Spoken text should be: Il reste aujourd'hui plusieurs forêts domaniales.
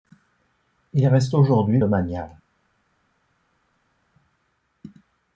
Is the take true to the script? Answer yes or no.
no